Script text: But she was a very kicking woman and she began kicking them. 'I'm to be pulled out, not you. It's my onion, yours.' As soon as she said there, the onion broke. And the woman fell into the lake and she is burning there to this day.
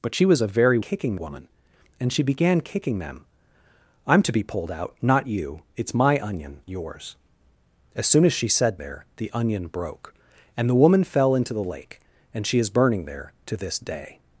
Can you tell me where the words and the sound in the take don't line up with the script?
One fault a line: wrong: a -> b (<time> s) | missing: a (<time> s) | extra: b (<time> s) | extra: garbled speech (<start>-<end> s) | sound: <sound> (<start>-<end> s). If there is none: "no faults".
no faults